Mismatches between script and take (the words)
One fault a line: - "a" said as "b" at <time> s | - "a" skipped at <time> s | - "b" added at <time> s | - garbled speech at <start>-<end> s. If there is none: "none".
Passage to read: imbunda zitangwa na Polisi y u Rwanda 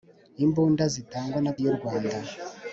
- "Polisi" skipped at 1.5 s